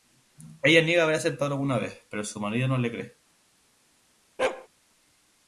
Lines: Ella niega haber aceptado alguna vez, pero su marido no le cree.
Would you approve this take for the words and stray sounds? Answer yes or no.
no